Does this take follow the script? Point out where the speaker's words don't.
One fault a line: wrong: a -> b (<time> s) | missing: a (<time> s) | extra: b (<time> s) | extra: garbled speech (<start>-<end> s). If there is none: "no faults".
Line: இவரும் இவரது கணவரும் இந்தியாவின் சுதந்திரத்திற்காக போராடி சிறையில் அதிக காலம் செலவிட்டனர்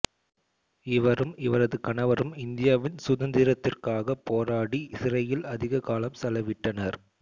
no faults